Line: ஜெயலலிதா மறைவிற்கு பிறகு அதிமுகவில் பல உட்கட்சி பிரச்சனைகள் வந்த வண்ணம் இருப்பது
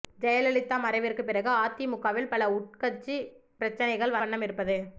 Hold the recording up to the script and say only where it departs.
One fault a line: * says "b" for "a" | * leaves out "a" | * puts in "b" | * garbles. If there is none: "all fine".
* leaves out "வந்த"